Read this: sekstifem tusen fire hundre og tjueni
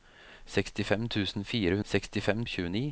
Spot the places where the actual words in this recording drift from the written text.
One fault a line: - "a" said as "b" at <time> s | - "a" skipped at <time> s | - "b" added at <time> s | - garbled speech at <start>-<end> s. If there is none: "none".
- "hundre" said as "sekstifem" at 1.9 s